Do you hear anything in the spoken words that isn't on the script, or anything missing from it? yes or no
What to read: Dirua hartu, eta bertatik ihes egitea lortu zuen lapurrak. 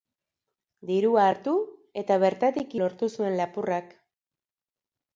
yes